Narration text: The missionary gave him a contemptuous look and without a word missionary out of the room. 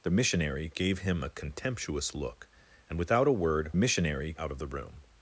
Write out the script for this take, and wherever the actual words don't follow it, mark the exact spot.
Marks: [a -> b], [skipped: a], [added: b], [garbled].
The missionary gave him a contemptuous look and without a word missionary out of the room.